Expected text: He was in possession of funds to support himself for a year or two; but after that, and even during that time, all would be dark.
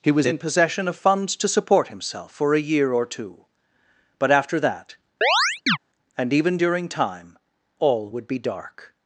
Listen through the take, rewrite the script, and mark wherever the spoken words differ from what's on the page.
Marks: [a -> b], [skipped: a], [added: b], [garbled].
He was in possession of funds to support himself for a year or two; but after that, and even during [skipped: that] time, all would be dark.